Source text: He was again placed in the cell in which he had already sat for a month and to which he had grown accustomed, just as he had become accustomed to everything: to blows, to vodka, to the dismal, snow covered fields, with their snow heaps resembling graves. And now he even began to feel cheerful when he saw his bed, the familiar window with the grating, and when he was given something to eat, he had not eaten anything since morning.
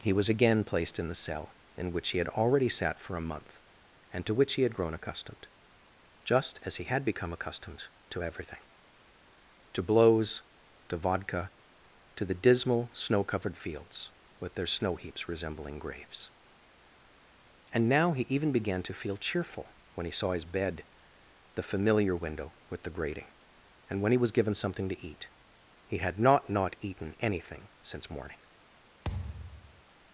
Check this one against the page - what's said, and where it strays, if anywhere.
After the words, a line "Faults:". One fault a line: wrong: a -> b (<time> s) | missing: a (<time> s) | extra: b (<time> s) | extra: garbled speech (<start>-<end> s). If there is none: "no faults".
He was again placed in the cell in which he had already sat for a month and to which he had grown accustomed, just as he had become accustomed to everything: to blows, to vodka, to the dismal, snow covered fields, with their snow heaps resembling graves. And now he even began to feel cheerful when he saw his bed, the familiar window with the grating, and when he was given something to eat, he had not not eaten anything since morning.
Faults:
extra: not (26.5 s)